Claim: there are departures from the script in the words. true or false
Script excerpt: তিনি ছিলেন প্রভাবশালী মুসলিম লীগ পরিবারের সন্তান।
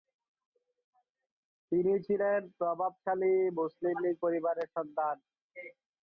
false